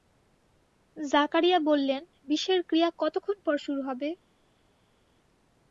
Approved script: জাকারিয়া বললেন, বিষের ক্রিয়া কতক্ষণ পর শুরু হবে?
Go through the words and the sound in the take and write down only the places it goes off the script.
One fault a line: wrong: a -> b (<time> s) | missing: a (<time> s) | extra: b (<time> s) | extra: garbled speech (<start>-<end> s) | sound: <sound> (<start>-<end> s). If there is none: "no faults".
no faults